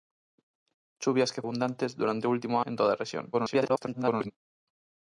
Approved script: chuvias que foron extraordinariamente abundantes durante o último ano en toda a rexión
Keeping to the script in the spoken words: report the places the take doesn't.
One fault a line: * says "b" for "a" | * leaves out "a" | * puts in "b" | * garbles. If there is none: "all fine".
* leaves out "foron extraordinariamente"
* leaves out "ano"
* garbles